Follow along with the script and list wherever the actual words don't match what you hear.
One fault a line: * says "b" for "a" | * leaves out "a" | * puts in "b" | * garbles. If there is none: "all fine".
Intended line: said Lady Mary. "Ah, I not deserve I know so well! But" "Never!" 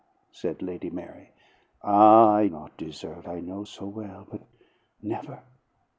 all fine